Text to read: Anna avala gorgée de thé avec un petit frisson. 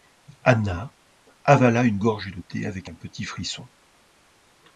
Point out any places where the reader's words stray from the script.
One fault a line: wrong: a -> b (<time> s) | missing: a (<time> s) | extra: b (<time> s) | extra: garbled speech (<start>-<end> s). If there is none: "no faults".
extra: une (1.8 s)